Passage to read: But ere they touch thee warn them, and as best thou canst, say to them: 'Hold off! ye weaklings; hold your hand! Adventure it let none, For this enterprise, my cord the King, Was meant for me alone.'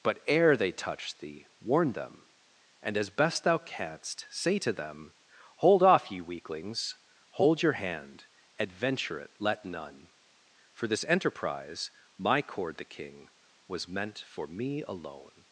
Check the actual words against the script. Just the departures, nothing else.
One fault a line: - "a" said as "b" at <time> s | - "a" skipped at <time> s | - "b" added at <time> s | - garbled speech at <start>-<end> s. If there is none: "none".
none